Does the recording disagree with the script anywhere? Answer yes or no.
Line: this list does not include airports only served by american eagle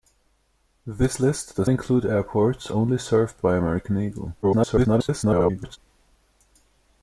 yes